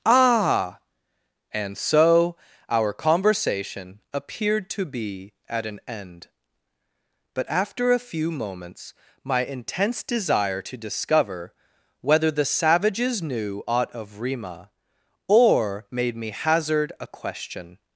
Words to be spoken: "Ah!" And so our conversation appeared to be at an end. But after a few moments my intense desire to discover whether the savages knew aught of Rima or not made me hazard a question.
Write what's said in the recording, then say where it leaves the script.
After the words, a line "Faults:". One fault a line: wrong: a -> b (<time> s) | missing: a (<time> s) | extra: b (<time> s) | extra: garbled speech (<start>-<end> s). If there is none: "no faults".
"Ah!" And so our conversation appeared to be at an end. But after a few moments my intense desire to discover whether the savages knew aught of Rima or made me hazard a question.
Faults:
missing: not (15.9 s)